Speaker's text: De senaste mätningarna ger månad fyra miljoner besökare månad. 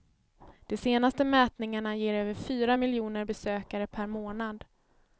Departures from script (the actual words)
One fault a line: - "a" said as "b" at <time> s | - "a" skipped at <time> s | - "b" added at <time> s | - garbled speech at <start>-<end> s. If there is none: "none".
- "månad" said as "över" at 2.1 s
- "per" added at 3.9 s